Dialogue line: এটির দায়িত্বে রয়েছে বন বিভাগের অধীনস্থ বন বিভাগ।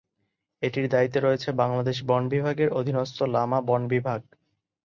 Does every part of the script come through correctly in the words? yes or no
no